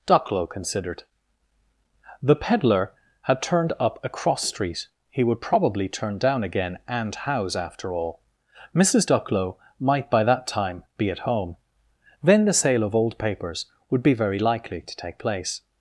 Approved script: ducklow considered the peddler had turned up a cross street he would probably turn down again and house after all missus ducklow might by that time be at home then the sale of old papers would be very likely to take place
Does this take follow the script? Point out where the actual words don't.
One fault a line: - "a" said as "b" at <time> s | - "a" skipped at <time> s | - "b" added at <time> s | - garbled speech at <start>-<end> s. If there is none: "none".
none